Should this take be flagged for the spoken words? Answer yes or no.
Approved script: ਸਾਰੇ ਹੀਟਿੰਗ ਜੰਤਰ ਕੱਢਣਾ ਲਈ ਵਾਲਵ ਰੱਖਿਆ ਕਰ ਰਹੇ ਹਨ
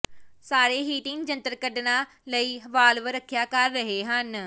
no